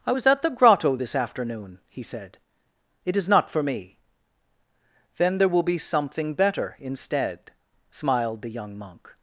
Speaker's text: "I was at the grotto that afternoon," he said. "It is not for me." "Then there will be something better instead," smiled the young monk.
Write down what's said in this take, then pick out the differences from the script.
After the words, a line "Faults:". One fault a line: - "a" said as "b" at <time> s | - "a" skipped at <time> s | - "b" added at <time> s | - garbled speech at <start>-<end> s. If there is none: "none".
"I was at the grotto this afternoon," he said. "It is not for me." "Then there will be something better instead," smiled the young monk.
Faults:
- "that" said as "this" at 0.9 s